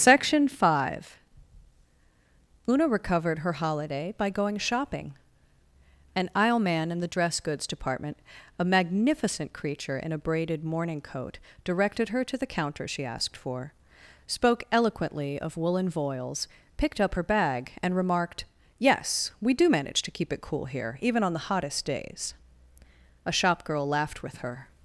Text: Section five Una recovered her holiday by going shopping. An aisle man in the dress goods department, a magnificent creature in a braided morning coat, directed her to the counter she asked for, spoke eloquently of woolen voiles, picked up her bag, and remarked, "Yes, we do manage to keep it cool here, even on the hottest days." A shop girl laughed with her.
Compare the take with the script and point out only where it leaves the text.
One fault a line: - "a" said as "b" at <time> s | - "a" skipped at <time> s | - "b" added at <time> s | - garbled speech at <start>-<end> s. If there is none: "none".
none